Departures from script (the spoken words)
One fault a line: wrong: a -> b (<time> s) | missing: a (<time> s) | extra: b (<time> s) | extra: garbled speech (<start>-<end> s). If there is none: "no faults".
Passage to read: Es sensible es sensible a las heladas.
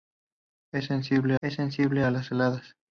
no faults